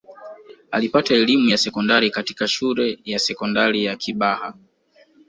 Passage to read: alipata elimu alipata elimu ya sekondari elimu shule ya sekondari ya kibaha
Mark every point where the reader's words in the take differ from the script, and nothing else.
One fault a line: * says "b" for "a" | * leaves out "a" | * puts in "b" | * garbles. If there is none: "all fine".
* leaves out "alipata elimu"
* says "katika" for "elimu"